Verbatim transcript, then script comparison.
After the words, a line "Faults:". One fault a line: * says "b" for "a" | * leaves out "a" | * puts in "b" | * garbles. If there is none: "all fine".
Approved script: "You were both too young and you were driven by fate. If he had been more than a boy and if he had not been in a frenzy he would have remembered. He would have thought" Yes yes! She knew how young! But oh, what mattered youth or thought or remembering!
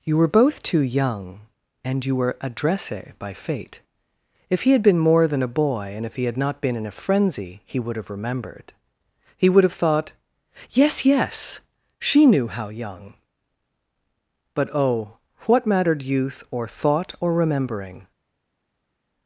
"You were both too young and you were adresse by fate. If he had been more than a boy and if he had not been in a frenzy he would have remembered. He would have thought" Yes yes! She knew how young! But oh, what mattered youth or thought or remembering!
Faults:
* says "adresse" for "driven"